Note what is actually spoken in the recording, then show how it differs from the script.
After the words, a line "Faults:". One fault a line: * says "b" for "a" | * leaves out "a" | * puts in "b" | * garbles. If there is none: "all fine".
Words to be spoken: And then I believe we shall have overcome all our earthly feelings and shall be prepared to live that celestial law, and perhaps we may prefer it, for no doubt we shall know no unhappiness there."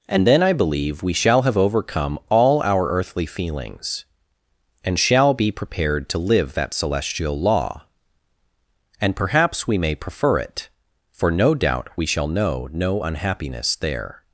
And then I believe we shall have overcome all our earthly feelings and shall be prepared to live that celestial law, and perhaps we may prefer it, for no doubt we shall know no unhappiness there."
Faults:
all fine